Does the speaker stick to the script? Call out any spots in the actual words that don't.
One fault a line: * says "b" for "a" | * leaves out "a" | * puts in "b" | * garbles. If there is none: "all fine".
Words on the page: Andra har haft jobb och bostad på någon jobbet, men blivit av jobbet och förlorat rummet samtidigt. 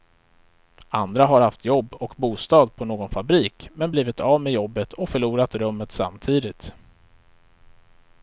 * says "fabrik" for "jobbet"
* puts in "med"